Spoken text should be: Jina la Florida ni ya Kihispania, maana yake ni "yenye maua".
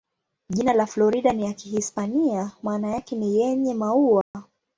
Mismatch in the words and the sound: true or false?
true